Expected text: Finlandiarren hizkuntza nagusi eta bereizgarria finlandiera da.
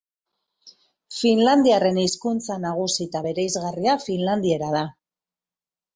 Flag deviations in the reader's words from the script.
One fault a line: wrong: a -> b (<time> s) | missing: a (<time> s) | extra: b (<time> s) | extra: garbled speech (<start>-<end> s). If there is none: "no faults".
no faults